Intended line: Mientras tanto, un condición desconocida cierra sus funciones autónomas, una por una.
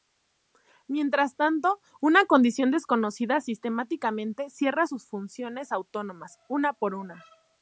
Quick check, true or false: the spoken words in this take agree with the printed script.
false